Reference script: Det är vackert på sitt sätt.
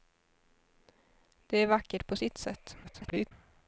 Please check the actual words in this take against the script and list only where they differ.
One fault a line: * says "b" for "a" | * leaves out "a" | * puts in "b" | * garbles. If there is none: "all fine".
* garbles